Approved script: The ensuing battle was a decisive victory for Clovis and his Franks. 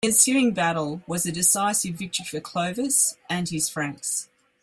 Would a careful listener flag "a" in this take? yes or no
no